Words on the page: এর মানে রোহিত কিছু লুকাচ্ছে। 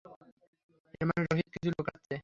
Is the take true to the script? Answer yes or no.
yes